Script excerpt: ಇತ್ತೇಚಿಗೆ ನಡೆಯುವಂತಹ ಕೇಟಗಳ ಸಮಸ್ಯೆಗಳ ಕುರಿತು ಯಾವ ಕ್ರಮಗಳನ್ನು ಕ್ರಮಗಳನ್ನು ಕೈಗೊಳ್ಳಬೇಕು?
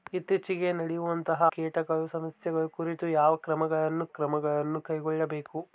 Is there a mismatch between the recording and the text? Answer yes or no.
no